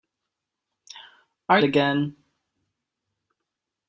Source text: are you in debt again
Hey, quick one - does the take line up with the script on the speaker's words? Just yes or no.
no